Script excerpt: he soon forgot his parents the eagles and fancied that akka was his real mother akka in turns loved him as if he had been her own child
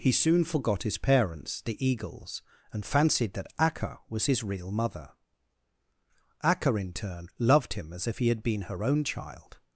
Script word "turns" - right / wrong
wrong